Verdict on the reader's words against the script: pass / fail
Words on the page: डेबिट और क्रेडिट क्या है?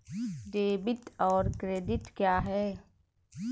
pass